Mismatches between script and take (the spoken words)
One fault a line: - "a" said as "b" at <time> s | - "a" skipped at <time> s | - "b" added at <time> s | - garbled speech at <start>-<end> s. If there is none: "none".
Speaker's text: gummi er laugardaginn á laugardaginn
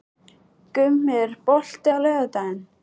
- "laugardaginn" said as "bolti" at 1.5 s